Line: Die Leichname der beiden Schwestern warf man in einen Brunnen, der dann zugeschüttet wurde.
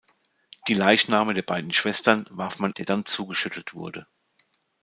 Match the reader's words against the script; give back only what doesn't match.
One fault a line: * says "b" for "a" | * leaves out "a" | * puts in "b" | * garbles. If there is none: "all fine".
* leaves out "in einen Brunnen"